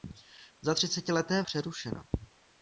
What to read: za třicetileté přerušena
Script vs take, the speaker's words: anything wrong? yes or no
no